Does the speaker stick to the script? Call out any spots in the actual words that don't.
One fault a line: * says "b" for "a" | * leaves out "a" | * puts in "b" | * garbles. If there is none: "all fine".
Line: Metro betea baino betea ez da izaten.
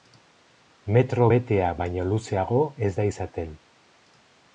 * says "luzeago" for "betea"